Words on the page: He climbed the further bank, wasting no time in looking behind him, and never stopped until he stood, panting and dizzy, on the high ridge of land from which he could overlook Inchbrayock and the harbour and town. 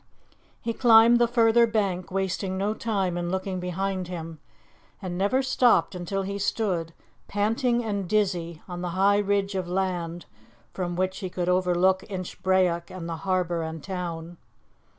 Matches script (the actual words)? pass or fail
pass